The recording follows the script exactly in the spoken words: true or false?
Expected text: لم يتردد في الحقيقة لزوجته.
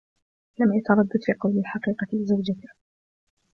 false